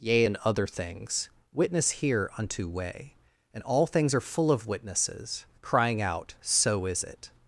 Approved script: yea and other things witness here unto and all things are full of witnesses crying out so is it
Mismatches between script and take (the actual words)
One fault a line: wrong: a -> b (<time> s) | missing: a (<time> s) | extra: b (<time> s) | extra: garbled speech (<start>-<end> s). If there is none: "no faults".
extra: way (2.7 s)